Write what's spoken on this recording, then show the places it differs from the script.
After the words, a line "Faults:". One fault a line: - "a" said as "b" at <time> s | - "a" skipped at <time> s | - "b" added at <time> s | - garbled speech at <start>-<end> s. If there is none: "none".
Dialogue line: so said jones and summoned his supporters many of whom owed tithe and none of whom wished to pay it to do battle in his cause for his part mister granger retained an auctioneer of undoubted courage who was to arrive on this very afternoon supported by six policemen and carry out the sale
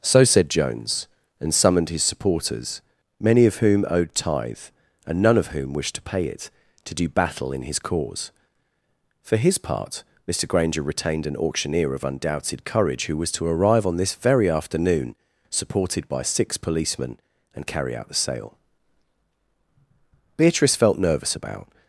so said jones and summoned his supporters many of whom owed tithe and none of whom wished to pay it to do battle in his cause for his part mister granger retained an auctioneer of undoubted courage who was to arrive on this very afternoon supported by six policemen and carry out the sale beatrice felt nervous about
Faults:
- "beatrice felt nervous about" added at 20.4 s